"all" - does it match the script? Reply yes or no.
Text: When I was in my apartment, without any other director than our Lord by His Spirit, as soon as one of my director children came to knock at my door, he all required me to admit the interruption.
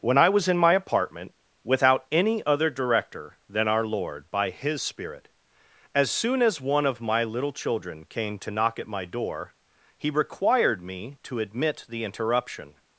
no